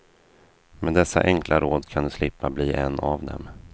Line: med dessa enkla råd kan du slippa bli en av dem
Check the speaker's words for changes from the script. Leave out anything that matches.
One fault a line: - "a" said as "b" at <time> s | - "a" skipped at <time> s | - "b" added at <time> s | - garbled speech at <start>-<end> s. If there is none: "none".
none